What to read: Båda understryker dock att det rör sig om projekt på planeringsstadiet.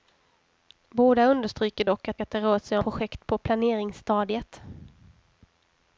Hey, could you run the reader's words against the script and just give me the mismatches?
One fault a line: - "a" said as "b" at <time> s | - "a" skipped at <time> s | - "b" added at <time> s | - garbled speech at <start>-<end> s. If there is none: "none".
- "att" added at 2.2 s
- "om" skipped at 2.8 s